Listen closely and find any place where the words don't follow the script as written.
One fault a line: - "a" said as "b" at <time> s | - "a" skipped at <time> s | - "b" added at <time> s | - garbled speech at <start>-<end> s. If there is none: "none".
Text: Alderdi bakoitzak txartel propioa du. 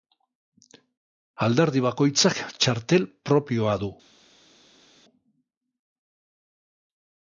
none